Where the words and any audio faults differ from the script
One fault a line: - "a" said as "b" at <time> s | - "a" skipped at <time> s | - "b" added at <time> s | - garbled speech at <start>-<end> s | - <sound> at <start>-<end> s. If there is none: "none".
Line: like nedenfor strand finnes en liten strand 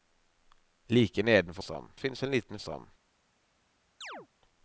- chirp at 4.0-4.3 s